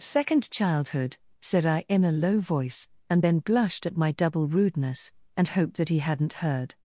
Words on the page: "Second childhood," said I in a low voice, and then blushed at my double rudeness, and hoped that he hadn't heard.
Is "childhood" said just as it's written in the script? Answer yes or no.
yes